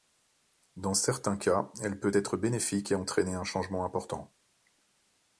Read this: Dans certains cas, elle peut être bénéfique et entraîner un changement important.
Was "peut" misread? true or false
false